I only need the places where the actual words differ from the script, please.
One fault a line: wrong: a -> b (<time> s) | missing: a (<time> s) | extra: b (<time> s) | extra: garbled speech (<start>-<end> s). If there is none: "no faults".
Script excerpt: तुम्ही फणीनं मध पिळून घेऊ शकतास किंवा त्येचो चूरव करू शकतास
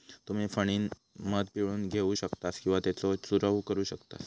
no faults